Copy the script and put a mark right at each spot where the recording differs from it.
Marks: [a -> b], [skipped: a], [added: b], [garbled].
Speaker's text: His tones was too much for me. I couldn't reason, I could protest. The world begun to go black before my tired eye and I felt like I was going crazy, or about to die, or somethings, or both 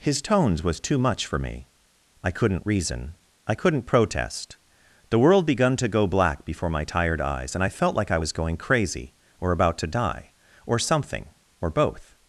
His tones was too much for me. I couldn't reason, I [could -> couldn't] protest. The world begun to go black before my tired [eye -> eyes] and I felt like I was going crazy, or about to die, or [somethings, -> something] or both